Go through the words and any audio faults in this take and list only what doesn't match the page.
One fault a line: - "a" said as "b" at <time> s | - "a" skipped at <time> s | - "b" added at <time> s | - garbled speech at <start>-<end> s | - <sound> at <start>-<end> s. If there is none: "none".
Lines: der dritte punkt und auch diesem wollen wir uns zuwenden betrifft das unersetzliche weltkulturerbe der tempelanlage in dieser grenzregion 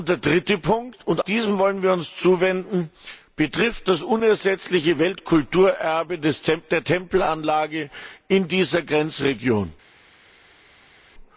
- "auch" skipped at 1.2 s